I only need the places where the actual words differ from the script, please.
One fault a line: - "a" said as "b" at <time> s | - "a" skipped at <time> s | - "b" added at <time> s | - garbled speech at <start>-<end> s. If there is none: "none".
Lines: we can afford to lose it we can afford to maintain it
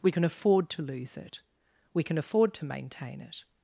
none